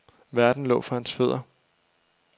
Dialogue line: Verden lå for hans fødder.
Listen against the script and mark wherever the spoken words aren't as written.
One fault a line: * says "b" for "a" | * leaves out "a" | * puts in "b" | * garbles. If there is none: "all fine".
all fine